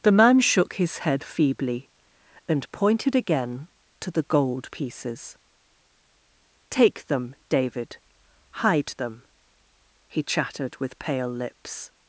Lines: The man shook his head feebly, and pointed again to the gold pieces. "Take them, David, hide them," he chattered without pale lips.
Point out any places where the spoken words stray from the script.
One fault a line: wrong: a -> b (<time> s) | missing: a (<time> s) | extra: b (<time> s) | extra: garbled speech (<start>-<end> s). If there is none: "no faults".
wrong: without -> with (10.8 s)